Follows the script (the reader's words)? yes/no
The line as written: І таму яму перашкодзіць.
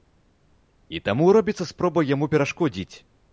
no